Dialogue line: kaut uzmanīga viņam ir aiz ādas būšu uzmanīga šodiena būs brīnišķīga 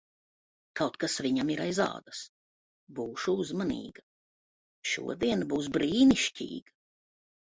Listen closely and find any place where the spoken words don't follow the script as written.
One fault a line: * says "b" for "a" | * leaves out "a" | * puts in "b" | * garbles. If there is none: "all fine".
* says "kas" for "uzmanīga"